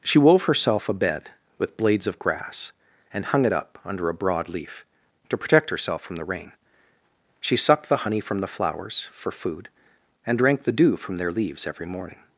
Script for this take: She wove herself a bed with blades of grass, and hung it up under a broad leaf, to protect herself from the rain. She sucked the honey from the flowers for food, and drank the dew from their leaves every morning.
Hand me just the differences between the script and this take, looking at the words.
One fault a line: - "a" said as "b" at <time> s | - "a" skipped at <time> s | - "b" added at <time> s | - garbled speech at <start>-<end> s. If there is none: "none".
none